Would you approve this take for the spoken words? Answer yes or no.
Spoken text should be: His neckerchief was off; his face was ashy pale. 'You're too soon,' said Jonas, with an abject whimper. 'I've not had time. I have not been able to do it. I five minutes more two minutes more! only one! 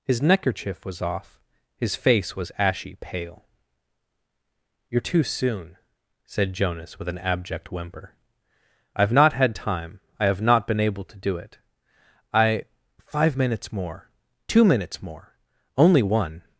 yes